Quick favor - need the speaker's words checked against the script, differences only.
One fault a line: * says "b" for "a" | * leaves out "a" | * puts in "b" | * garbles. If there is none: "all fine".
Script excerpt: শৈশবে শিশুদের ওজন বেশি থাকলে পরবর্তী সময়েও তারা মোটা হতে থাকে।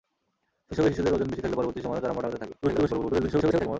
* garbles